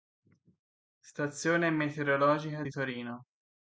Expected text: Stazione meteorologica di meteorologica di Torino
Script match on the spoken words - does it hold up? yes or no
no